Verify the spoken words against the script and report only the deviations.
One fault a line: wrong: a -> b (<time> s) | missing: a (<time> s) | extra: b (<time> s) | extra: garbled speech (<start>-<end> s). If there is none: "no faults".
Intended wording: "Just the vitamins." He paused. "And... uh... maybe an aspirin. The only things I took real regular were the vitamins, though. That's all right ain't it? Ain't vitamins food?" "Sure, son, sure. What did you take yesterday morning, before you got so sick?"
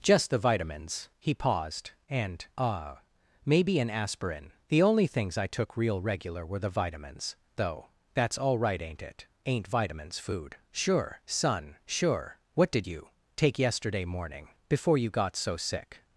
no faults